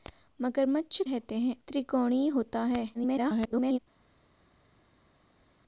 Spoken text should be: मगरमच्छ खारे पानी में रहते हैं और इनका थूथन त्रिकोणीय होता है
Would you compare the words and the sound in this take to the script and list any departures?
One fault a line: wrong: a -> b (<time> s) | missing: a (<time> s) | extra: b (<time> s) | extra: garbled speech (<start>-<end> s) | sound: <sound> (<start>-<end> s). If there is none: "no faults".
missing: खारे पानी में (1.0 s)
missing: और इनका थूथन (1.5 s)
extra: garbled speech (2.9-3.8 s)